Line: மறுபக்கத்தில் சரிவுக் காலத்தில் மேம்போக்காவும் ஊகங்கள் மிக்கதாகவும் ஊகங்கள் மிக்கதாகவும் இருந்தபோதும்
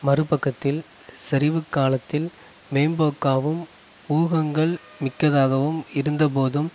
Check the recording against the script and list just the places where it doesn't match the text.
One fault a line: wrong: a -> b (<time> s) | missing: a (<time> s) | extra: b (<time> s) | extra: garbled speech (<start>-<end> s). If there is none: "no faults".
missing: ஊகங்கள் மிக்கதாகவும் (5.8 s)